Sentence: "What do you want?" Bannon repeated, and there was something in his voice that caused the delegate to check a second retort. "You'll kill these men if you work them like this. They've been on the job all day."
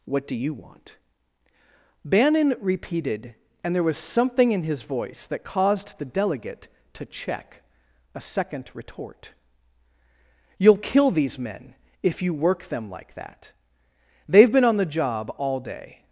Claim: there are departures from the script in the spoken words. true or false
true